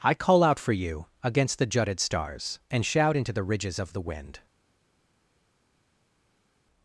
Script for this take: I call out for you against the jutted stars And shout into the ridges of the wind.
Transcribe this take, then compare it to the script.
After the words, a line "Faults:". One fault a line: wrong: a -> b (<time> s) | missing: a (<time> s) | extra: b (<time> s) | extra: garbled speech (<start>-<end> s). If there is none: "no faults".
I call out for you against the jutted stars And shout into the ridges of the wind.
Faults:
no faults